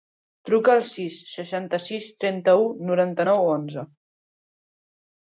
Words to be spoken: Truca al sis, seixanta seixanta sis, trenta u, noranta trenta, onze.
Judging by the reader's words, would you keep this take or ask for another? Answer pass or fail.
fail